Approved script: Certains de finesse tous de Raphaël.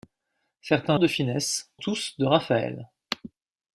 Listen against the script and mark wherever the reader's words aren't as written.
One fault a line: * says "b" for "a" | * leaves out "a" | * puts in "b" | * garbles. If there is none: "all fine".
all fine